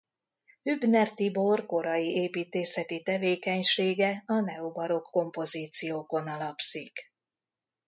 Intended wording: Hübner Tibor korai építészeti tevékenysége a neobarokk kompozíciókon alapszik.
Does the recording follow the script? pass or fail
pass